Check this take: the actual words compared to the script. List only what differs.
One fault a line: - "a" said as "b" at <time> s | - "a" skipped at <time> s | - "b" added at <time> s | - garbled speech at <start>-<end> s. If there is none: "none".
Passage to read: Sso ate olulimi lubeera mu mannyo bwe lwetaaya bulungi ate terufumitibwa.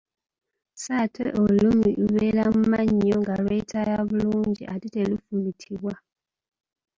- "bwe" said as "nga" at 3.2 s